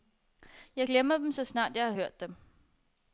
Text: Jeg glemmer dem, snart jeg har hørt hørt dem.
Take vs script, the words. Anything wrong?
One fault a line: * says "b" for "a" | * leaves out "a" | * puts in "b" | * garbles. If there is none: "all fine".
* puts in "så"
* leaves out "hørt"